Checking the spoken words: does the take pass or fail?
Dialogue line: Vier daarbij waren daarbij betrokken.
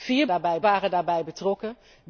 pass